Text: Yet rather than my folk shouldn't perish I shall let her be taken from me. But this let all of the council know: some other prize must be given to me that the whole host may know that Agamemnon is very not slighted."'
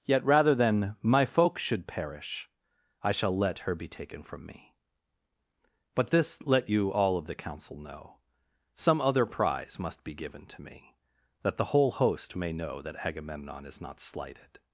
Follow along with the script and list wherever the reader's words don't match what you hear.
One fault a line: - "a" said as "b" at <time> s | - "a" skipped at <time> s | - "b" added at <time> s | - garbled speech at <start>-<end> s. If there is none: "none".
- "shouldn't" said as "should" at 1.6 s
- "you" added at 6.7 s
- "very" skipped at 13.8 s